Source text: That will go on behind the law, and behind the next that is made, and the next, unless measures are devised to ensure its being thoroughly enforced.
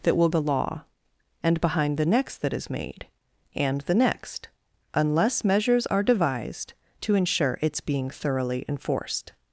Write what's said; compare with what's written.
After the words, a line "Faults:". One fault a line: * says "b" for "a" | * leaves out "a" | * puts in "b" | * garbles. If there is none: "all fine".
That will the law, and behind the next that is made, and the next, unless measures are devised to ensure its being thoroughly enforced.
Faults:
* leaves out "go on behind"